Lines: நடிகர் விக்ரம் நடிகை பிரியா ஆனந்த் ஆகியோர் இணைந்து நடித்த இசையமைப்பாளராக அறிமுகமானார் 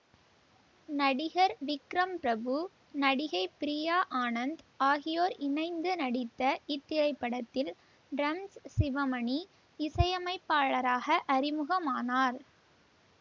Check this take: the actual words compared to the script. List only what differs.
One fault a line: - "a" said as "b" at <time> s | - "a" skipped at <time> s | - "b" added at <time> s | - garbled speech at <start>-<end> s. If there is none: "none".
- "பிரபு" added at 2.2 s
- "இத்திரைப்படத்தில் டிரம்ஸ் சிவமணி" added at 6.7 s